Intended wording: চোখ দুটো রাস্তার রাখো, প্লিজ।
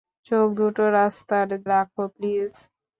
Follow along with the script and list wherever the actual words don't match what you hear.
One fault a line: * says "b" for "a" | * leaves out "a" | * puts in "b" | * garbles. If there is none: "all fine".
all fine